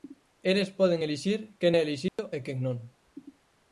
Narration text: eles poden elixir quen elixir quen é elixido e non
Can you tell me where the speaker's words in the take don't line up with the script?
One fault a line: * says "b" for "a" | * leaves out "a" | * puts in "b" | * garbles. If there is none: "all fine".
* leaves out "elixir quen"
* puts in "quen"